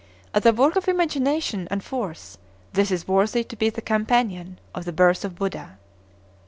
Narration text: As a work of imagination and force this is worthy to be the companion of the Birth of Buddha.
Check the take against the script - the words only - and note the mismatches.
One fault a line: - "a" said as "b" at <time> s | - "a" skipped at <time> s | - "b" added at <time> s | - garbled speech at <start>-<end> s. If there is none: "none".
none